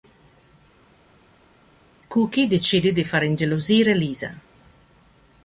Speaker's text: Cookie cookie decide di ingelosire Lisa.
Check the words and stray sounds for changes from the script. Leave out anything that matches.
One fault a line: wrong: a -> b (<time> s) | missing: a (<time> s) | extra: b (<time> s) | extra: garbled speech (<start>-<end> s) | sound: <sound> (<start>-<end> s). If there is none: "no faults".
missing: cookie (2.5 s)
extra: far (3.0 s)